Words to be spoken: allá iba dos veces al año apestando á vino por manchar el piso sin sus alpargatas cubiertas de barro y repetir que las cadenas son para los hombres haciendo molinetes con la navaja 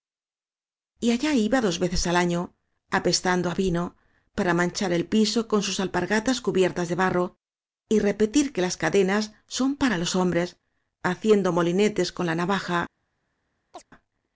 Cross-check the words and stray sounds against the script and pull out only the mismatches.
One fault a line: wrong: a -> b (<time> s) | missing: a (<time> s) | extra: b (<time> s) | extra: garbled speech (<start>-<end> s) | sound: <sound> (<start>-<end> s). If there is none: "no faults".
wrong: por -> para (4.4 s)
wrong: sin -> con (5.5 s)
sound: chirp (13.7-13.9 s)